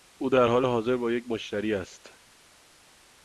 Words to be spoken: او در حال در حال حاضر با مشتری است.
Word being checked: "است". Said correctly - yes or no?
yes